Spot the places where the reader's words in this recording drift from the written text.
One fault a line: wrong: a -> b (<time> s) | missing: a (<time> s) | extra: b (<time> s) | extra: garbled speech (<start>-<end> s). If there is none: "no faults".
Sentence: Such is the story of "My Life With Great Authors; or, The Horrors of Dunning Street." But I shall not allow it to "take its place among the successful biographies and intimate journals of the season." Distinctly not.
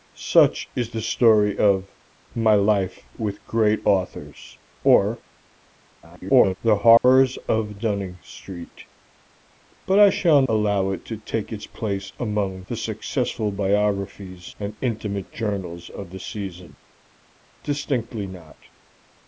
extra: garbled speech (6.0-6.6 s)
missing: not (10.4 s)